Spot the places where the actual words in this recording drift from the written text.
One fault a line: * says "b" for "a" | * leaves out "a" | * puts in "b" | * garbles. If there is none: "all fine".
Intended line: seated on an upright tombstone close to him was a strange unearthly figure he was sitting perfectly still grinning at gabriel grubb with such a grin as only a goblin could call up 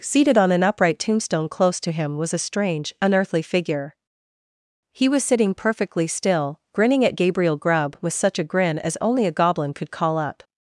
all fine